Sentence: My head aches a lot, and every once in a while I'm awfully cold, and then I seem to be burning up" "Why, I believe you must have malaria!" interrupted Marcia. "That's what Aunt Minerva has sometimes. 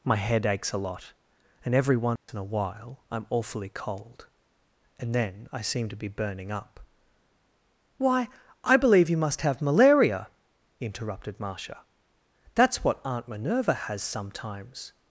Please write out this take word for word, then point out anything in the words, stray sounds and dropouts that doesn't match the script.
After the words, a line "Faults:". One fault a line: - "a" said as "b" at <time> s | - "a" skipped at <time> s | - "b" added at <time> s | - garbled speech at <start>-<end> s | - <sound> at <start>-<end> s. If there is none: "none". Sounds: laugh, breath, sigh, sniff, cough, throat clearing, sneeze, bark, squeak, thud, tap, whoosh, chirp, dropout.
My head aches a lot, and every once in a while I'm awfully cold, and then I seem to be burning up" "Why, I believe you must have malaria!" interrupted Marcia. "That's what Aunt Minerva has sometimes.
Faults:
- dropout at 2.2-2.3 s